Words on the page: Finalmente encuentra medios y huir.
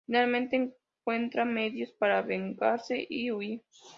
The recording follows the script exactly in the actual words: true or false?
false